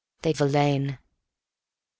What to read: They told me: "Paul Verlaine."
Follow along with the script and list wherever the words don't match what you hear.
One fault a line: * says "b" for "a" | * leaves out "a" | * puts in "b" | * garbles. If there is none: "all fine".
* leaves out "told me Paul"